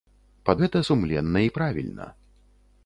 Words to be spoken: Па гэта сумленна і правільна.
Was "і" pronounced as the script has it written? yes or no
yes